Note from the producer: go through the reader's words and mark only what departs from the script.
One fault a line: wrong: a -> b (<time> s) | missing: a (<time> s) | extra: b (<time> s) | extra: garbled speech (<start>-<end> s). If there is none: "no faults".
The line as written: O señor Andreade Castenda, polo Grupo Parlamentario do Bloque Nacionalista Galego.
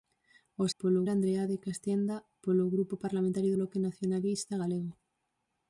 wrong: señor -> polo (0.8 s)
missing: do (3.5 s)